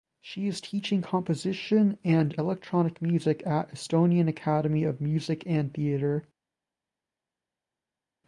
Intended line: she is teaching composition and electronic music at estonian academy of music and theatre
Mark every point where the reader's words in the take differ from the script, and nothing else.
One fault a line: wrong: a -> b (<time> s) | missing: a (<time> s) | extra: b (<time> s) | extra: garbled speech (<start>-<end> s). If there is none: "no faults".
no faults